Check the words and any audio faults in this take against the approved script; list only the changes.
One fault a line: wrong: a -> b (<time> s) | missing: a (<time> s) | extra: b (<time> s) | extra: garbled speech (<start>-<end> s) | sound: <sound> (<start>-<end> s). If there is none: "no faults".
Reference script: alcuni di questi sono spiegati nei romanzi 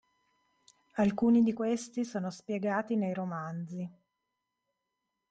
no faults